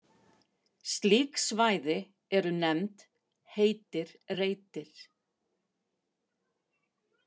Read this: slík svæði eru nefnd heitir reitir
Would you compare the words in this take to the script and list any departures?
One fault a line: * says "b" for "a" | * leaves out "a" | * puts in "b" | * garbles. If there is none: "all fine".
all fine